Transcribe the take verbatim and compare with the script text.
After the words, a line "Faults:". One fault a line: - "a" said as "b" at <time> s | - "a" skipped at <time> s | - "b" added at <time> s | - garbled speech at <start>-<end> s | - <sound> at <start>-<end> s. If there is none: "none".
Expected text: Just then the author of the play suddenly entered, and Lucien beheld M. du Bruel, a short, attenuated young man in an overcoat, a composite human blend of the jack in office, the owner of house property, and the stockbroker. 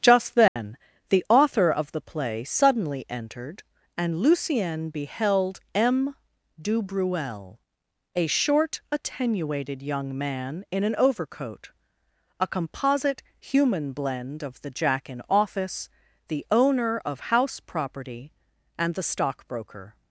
Just then the author of the play suddenly entered, and Lucien beheld M. du Bruel, a short, attenuated young man in an overcoat, a composite human blend of the jack in office, the owner of house property, and the stockbroker.
Faults:
- dropout at 0.5-0.6 s